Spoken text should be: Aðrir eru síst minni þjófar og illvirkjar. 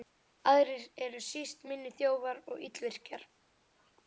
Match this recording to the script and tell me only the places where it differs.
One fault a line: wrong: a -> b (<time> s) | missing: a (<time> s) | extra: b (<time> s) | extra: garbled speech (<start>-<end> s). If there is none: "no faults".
no faults